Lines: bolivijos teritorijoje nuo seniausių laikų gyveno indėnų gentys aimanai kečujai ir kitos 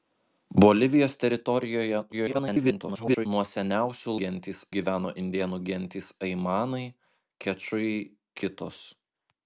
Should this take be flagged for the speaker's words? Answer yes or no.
yes